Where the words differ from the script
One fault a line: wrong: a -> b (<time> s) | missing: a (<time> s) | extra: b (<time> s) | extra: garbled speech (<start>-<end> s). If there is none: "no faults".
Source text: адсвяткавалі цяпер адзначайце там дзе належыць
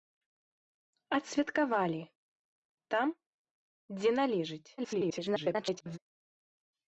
missing: цяпер адзначайце (2.0 s)
extra: garbled speech (4.8-6.0 s)